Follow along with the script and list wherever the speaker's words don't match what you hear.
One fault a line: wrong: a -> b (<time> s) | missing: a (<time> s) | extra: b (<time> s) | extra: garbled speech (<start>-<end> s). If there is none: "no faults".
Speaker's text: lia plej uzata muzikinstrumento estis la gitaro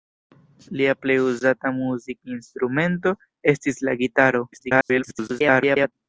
extra: garbled speech (4.5-5.9 s)